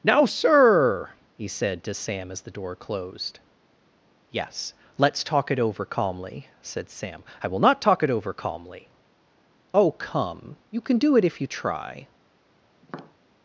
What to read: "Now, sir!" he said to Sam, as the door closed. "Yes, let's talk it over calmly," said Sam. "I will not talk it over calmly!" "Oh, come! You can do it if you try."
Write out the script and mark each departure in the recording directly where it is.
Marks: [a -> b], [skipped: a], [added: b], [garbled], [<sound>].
"Now, sir!" he said to Sam, as the door closed. "Yes, let's talk it over calmly," said Sam. "I will not talk it over calmly!" "Oh, come! You can do it if you try." [tap]